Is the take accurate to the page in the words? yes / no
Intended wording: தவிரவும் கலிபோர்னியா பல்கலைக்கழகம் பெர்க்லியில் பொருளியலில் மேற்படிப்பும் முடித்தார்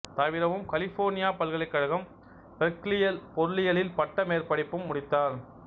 no